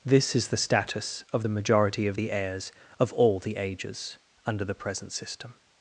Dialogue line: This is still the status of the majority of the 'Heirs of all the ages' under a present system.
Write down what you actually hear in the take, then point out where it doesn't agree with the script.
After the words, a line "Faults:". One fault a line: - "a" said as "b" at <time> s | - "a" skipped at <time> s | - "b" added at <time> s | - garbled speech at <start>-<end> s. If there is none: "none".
This is the status of the majority of the 'Heirs of all the ages' under the present system.
Faults:
- "still" skipped at 0.5 s
- "a" said as "the" at 4.6 s